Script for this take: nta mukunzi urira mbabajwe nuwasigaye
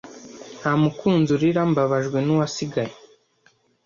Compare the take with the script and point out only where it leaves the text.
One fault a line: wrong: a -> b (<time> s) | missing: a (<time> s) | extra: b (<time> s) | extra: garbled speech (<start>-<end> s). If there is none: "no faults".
no faults